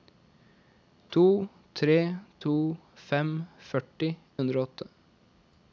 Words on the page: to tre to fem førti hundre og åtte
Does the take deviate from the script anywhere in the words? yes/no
no